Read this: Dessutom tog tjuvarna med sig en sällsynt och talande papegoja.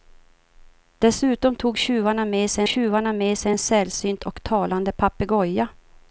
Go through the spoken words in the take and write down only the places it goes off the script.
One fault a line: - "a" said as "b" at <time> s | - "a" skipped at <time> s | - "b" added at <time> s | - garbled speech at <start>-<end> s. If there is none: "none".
- "tjuvarna med sig" added at 2.6 s